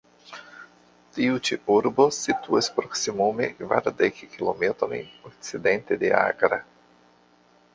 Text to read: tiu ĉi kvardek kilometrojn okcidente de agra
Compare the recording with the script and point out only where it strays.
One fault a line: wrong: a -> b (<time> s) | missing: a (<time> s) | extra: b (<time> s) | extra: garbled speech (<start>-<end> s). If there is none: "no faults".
extra: urbo situas proksimume (1.7 s)